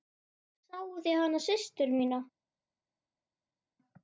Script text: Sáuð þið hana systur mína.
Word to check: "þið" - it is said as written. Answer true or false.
true